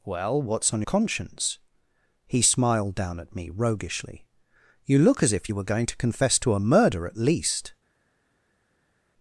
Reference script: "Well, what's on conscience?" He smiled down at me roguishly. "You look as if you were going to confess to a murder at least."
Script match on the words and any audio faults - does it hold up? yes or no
yes